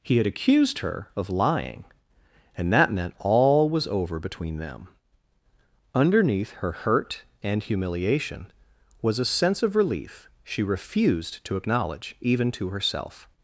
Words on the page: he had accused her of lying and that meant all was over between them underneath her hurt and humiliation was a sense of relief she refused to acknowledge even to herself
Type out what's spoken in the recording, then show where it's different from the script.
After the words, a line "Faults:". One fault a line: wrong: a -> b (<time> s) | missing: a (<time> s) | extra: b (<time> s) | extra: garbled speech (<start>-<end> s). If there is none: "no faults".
he had accused her of lying and that meant all was over between them underneath her hurt and humiliation was a sense of relief she refused to acknowledge even to herself
Faults:
no faults